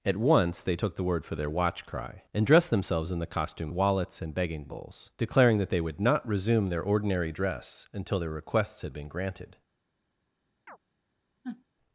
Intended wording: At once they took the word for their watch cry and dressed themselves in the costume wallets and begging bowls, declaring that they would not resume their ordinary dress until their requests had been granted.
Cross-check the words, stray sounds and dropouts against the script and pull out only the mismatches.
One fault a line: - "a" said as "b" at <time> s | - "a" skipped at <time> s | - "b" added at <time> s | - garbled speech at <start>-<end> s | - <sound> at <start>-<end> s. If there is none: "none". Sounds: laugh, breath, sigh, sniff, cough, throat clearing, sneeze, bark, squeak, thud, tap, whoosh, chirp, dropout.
- chirp at 10.7-10.8 s
- sniff at 11.4-11.6 s